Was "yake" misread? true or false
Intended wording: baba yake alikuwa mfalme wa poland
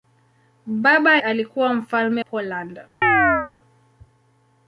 true